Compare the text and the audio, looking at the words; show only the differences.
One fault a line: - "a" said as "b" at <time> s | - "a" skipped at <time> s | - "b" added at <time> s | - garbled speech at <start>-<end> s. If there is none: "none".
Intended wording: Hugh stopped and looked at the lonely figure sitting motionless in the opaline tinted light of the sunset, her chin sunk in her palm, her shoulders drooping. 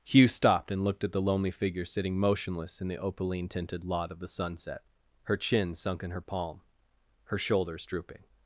- "light" said as "lot" at 3.9 s